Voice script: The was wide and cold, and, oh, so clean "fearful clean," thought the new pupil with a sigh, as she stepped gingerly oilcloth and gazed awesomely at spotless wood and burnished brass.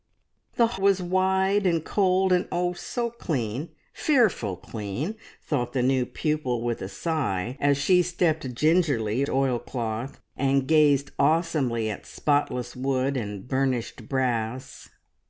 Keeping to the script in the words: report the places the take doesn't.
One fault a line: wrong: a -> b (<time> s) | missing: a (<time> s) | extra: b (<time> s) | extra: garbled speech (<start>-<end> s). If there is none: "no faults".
no faults